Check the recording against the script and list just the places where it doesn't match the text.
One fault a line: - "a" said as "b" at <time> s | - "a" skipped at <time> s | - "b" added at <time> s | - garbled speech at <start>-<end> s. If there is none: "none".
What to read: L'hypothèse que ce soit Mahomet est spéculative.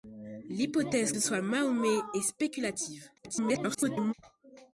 - "que" skipped at 1.1 s
- garbled speech at 3.2-4.1 s